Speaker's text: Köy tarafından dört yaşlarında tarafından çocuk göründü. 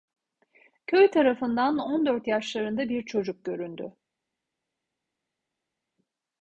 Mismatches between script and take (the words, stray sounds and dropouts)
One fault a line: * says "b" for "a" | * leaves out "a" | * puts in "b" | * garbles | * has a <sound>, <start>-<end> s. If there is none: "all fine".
* puts in "on"
* says "bir" for "tarafından"